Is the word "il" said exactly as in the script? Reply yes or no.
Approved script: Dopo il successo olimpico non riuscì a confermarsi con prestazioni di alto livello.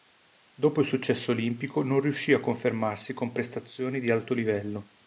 yes